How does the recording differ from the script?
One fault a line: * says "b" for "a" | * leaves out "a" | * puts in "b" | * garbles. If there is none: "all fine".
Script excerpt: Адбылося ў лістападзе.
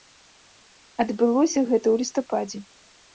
* puts in "гэта"